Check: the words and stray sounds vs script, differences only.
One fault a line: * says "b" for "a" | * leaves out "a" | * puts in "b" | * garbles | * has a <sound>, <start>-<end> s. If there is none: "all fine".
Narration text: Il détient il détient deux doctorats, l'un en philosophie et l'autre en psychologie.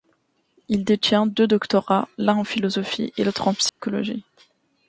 * leaves out "il détient"
* has a dropout, 3.7-3.8 s